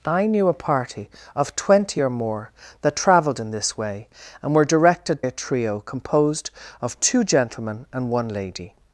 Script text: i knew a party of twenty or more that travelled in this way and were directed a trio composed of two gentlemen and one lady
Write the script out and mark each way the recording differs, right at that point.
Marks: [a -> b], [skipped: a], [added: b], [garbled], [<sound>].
i knew a party of twenty or more that travelled in this way and were directed a trio composed of two gentlemen and one lady